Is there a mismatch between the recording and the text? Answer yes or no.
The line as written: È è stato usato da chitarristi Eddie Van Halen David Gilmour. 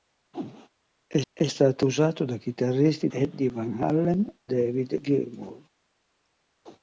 no